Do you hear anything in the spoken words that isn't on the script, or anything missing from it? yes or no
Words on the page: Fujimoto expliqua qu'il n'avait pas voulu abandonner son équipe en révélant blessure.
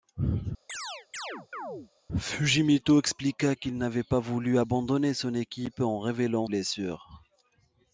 no